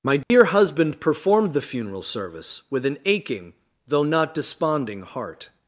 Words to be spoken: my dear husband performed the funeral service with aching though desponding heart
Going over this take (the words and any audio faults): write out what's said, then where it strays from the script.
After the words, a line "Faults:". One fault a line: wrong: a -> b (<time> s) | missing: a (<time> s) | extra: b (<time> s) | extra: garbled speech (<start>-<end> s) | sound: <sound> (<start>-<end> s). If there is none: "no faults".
my dear husband performed the funeral service with an aching though not desponding heart
Faults:
sound: dropout (0.2-0.3 s)
extra: an (2.9 s)
extra: not (4.0 s)